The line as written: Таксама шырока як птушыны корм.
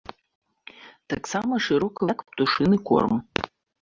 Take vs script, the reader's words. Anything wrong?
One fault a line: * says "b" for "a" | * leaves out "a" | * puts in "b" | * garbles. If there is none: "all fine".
all fine